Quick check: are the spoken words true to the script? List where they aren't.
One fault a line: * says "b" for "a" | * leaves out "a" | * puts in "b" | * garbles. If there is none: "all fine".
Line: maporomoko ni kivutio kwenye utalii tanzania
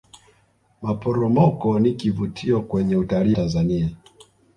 all fine